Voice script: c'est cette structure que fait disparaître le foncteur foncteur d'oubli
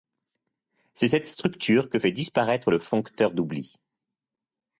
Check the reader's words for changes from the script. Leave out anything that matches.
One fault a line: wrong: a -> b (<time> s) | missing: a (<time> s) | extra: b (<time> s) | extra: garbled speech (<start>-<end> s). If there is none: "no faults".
missing: foncteur (3.3 s)